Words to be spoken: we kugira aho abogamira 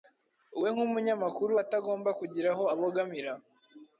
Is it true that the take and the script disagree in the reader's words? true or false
true